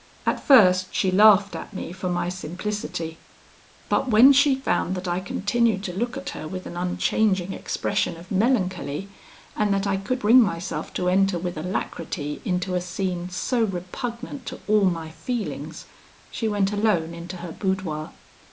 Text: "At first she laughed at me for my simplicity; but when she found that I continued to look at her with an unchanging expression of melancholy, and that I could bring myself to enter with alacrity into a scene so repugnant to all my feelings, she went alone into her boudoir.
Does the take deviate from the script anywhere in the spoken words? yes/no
no